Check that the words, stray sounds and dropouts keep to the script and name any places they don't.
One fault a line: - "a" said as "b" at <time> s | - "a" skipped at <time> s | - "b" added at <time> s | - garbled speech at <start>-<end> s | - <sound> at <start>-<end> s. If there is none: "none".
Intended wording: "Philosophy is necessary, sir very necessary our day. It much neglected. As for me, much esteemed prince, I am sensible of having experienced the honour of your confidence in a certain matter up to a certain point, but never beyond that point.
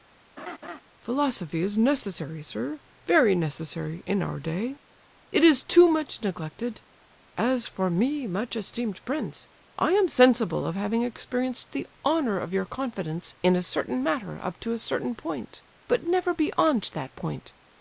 - laugh at 0.4-0.8 s
- "in" added at 4.1 s
- "is too" added at 5.4 s